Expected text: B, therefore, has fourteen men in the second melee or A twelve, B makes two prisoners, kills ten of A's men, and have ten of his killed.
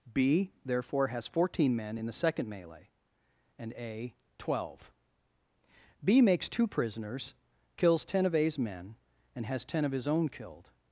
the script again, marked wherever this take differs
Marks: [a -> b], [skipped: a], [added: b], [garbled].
B, therefore, has fourteen men in the second melee [or -> and] A twelve, B makes two prisoners, kills ten of A's men, and [have -> has] ten of his [added: own] killed.